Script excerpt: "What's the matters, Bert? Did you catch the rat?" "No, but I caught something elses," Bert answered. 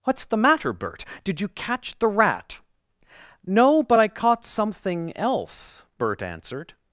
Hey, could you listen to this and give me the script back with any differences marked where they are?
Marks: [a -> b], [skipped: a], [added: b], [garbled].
"What's the [matters, -> matter] Bert? Did you catch the rat?" "No, but I caught something [elses," -> else] Bert answered.